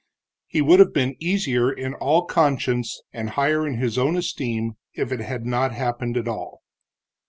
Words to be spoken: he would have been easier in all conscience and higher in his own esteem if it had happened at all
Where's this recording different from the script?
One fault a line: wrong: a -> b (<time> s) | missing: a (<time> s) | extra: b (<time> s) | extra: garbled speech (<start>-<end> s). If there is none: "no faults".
extra: not (5.4 s)